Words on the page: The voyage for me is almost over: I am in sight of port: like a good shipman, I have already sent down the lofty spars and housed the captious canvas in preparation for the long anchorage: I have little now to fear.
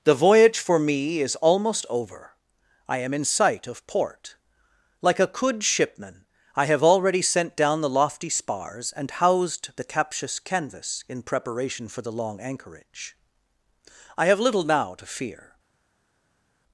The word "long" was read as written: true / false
true